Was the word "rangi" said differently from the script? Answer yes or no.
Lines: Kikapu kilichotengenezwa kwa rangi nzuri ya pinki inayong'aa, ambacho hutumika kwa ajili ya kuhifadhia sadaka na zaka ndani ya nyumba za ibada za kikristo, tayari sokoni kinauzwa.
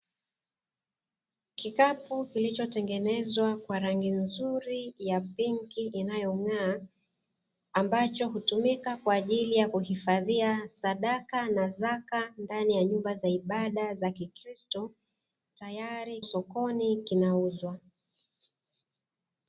no